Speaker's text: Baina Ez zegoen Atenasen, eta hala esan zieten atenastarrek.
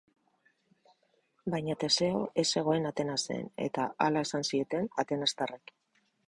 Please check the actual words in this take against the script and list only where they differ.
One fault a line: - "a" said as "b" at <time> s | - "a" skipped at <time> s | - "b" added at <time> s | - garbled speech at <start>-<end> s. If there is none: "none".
- "Teseo" added at 1.8 s